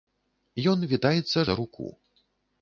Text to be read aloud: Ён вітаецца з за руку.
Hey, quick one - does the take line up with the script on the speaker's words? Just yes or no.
yes